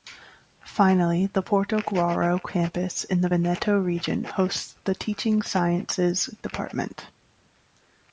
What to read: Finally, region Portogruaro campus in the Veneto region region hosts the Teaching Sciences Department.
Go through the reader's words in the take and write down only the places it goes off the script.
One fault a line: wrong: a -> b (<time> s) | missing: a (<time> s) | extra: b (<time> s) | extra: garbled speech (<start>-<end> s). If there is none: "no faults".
wrong: region -> the (1.3 s)
missing: region (4.2 s)